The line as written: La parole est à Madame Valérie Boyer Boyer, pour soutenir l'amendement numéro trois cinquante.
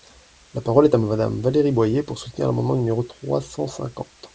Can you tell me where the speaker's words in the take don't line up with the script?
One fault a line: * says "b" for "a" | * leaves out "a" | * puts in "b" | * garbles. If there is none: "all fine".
* leaves out "Boyer"
* puts in "cent"